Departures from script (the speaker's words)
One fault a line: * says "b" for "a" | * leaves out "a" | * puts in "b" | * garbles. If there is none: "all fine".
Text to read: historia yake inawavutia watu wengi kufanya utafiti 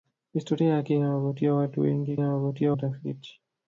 * says "inawavutia" for "kufanya"